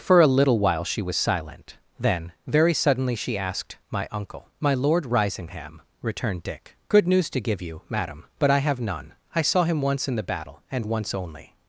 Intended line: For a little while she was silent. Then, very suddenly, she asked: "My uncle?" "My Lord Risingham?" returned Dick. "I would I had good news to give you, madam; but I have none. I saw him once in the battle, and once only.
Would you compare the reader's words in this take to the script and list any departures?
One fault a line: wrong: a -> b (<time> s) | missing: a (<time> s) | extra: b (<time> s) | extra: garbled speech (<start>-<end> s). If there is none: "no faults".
missing: I would I had (6.8 s)